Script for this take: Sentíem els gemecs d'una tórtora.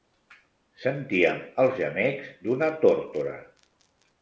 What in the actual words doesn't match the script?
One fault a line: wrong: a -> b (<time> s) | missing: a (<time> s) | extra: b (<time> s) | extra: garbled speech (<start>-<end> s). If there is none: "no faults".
no faults